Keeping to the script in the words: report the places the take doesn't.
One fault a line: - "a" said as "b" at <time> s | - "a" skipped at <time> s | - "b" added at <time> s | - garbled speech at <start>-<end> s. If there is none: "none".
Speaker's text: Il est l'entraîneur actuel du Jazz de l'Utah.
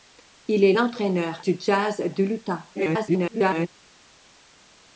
- "actuel" skipped at 1.4 s
- garbled speech at 2.7-3.7 s